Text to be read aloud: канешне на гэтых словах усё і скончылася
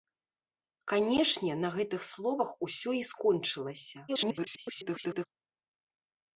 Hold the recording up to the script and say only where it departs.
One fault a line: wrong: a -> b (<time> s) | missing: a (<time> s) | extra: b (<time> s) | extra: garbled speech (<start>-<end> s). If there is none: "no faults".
extra: garbled speech (4.1-5.3 s)